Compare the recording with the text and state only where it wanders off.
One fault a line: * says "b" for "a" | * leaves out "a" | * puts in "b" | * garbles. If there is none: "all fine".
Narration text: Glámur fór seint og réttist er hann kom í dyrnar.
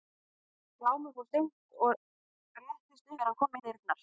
all fine